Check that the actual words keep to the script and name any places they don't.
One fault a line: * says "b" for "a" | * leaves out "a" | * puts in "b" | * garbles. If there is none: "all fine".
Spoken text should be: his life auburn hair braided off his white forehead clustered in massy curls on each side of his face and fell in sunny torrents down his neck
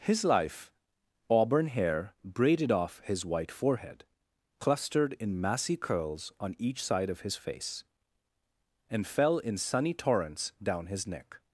all fine